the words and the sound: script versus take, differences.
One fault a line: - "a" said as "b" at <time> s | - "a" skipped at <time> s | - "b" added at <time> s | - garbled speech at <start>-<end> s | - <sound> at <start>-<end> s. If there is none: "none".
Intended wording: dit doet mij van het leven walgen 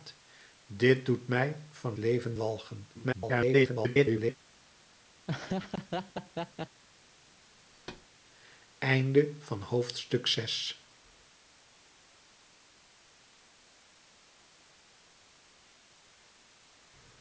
- "het" skipped at 2.0 s
- garbled speech at 2.9-4.4 s
- laugh at 5.3-6.8 s
- thud at 7.7-8.1 s